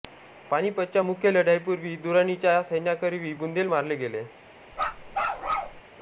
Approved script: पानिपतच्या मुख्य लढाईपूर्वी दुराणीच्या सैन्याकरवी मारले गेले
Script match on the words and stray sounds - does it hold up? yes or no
no